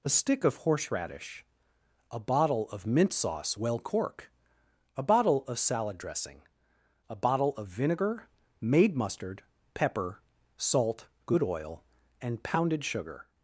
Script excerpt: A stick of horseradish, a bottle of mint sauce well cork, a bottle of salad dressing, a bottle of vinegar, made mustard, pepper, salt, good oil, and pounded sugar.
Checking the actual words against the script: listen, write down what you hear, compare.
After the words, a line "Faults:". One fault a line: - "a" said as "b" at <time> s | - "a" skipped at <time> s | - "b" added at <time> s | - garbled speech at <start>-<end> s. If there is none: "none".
A stick of horseradish, a bottle of mint sauce well cork, a bottle of salad dressing, a bottle of vinegar, made mustard, pepper, salt, good oil, and pounded sugar.
Faults:
none